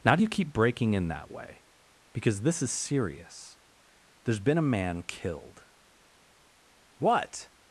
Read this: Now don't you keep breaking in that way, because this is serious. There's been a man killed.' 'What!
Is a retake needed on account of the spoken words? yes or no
yes